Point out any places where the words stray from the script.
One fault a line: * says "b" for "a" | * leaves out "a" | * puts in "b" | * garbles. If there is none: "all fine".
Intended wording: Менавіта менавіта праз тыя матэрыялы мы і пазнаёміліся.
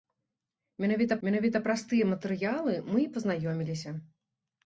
all fine